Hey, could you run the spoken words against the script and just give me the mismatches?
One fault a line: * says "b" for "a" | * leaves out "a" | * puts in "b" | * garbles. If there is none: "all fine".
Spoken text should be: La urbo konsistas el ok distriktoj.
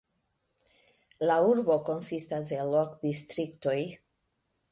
all fine